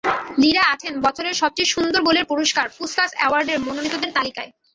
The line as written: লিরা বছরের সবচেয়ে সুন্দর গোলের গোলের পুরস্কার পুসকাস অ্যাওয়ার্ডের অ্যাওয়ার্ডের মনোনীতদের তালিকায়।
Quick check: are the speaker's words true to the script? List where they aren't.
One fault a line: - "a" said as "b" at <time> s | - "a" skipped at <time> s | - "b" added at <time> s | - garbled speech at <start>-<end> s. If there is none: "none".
- "আছেন" added at 0.7 s
- "গোলের" skipped at 2.2 s
- "অ্যাওয়ার্ডের" skipped at 3.6 s